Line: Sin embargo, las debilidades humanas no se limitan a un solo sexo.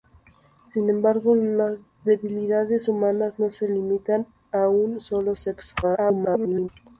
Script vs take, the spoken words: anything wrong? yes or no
yes